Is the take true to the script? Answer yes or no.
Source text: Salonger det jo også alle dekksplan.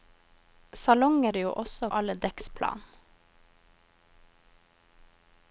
yes